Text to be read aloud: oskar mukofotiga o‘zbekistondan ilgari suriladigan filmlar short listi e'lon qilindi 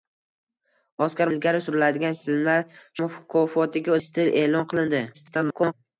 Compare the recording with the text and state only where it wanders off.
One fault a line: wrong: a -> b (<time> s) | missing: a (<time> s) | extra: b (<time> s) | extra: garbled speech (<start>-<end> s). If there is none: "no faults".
missing: mukofotiga o‘zbekistondan (1.3 s)
wrong: short -> mukofotiga (3.0 s)
extra: garbled speech (5.1-5.7 s)